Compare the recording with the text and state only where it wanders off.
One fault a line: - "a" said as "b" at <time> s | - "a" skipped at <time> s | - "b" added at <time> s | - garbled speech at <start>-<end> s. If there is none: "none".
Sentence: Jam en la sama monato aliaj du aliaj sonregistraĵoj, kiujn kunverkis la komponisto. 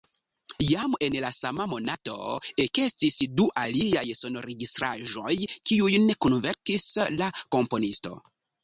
- "aliaj" said as "ekestis" at 2.6 s